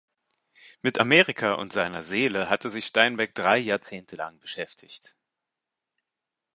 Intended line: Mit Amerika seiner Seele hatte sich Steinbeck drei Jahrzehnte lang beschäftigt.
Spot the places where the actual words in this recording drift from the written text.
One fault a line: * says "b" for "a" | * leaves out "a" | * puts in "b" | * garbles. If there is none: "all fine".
* puts in "und"